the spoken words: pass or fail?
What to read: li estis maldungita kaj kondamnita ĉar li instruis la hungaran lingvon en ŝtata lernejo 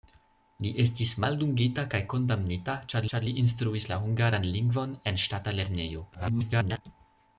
fail